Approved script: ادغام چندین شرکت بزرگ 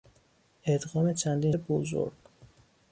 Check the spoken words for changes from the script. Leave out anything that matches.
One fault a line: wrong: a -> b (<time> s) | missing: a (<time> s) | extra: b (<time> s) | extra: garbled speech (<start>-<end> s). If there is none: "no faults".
missing: شرکت (1.5 s)